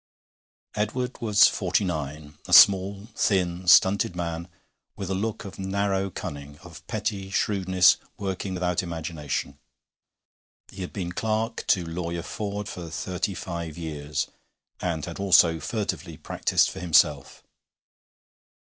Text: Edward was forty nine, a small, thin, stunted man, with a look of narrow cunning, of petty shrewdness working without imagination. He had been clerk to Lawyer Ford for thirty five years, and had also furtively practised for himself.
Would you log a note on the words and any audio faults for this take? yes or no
no